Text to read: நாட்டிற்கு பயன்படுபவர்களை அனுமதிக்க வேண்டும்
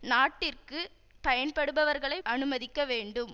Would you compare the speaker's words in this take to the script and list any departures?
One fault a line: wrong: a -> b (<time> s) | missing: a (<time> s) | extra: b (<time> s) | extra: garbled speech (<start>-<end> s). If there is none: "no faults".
no faults